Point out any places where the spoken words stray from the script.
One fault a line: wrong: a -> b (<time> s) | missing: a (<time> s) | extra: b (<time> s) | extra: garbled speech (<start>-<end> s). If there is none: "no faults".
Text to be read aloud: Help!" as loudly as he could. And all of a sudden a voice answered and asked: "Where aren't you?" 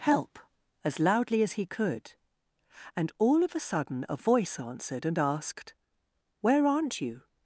no faults